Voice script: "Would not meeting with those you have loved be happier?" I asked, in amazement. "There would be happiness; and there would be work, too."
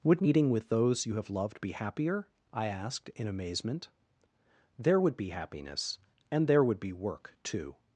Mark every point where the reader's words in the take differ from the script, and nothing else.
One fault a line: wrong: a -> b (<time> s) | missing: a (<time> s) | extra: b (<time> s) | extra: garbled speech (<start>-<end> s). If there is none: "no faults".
missing: not (0.2 s)